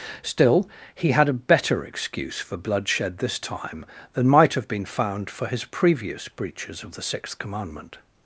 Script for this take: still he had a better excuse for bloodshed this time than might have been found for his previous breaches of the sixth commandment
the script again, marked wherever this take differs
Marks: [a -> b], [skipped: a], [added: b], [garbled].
still he had a better excuse for bloodshed this time than might have been found for his previous breaches of the sixth commandment